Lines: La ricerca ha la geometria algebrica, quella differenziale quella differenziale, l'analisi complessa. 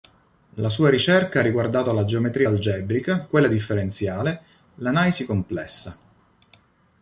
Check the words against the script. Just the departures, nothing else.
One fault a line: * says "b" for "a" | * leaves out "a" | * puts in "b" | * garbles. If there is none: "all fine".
* puts in "sua"
* puts in "riguardato"
* leaves out "quella differenziale"